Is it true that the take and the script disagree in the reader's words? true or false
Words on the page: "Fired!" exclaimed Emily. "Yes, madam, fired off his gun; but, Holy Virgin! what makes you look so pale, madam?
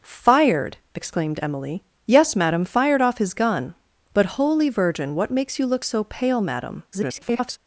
true